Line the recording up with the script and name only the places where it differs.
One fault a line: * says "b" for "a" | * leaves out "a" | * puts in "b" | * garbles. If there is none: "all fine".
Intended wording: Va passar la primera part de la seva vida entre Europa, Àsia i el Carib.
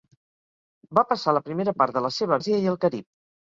* leaves out "vida entre Europa"